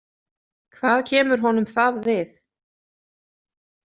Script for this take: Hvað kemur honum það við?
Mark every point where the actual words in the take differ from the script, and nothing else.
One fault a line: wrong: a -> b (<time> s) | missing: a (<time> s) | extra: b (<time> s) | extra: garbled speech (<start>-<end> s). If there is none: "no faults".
no faults